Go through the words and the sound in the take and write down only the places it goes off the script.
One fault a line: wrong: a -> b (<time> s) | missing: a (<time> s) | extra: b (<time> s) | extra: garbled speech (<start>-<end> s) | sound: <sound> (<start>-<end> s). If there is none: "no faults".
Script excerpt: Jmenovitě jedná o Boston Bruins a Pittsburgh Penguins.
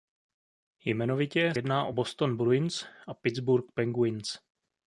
no faults